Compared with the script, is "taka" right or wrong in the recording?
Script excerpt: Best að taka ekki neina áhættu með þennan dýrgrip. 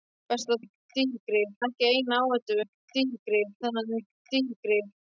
wrong